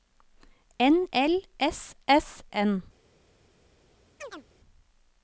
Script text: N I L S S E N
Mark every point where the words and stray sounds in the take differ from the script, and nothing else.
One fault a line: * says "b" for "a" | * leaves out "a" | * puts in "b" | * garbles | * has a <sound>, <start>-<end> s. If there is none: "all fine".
* leaves out "I"
* leaves out "E"
* has a chirp, 4.2-4.4 s